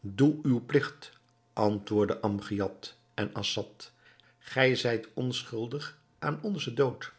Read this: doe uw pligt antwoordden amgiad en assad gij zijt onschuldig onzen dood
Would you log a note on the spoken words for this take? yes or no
yes